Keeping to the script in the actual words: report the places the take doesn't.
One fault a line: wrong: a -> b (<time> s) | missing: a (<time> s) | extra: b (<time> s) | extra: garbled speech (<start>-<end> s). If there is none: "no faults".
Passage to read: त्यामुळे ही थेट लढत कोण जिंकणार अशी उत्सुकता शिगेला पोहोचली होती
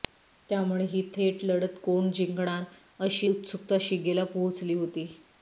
no faults